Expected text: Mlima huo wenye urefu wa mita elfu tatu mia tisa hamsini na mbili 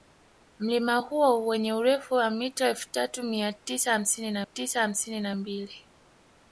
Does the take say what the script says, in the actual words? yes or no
no